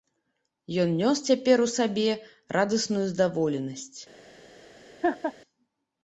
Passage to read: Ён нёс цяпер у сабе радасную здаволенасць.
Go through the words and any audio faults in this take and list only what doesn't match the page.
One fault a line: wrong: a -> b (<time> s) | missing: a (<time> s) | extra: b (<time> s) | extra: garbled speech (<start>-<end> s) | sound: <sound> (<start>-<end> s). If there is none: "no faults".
sound: laugh (5.0-5.3 s)